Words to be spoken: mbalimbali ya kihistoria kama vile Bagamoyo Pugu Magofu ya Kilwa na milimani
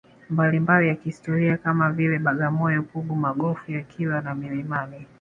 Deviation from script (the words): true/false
false